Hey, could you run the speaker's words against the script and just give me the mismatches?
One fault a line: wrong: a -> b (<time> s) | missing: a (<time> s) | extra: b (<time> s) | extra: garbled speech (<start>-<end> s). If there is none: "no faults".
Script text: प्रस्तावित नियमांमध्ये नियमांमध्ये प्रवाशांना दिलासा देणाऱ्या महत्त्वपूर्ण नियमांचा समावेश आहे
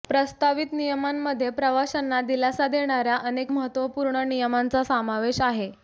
missing: नियमांमध्ये (1.5 s)
extra: अनेक (3.2 s)